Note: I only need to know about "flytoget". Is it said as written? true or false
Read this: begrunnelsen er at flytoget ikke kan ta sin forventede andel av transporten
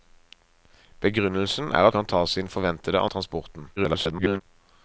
false